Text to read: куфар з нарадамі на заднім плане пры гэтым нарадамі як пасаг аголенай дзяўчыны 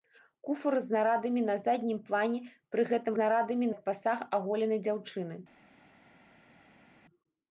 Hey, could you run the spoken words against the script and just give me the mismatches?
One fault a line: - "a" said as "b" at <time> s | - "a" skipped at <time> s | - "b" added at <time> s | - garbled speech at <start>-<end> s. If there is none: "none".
none